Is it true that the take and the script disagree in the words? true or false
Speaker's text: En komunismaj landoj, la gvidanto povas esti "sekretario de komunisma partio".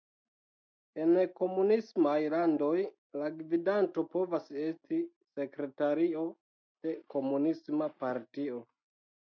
false